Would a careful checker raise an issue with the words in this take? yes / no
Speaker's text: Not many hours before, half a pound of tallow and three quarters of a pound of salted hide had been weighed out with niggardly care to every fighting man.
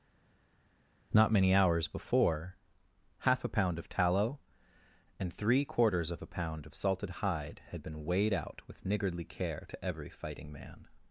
no